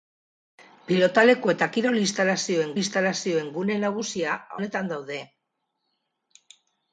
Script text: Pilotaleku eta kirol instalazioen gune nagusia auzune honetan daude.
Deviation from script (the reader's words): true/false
true